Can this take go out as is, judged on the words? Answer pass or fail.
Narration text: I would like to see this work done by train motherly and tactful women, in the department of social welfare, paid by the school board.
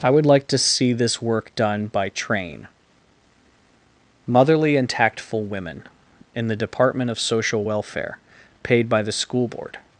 pass